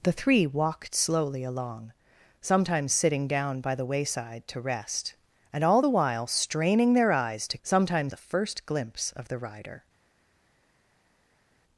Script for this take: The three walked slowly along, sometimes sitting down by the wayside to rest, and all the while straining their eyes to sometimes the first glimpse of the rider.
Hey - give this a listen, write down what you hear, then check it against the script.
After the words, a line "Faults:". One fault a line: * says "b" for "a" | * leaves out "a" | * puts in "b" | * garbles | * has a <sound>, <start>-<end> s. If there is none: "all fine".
The three walked slowly along, sometimes sitting down by the wayside to rest, and all the while straining their eyes to sometimes the first glimpse of the rider.
Faults:
all fine